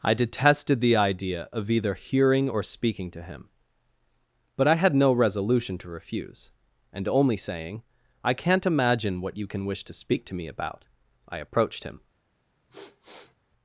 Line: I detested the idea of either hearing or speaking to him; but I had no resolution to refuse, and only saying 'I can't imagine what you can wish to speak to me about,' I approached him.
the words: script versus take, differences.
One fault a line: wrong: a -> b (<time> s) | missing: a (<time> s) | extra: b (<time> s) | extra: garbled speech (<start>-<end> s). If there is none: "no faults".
no faults